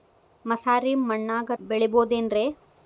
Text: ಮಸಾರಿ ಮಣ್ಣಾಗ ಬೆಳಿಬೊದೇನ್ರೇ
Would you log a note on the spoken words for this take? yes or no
no